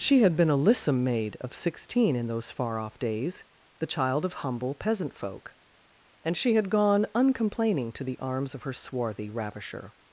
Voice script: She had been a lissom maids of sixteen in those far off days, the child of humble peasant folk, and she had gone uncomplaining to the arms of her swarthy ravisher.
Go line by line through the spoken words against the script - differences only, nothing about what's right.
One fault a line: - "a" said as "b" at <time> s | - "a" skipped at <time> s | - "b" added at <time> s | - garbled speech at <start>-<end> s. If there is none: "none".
- "maids" said as "maid" at 1.0 s